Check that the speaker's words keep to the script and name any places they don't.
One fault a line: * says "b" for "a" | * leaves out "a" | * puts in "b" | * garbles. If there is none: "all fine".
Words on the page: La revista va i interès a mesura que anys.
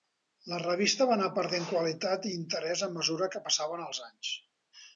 * puts in "anar perdent qualitat"
* puts in "passaven els"